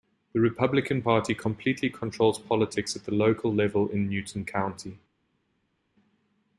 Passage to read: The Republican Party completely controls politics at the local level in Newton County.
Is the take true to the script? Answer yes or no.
yes